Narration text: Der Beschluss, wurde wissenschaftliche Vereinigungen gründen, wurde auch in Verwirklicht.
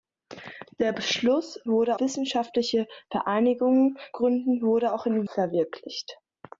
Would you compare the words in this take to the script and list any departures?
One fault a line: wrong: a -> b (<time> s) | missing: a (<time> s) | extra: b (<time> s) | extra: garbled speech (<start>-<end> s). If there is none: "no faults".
no faults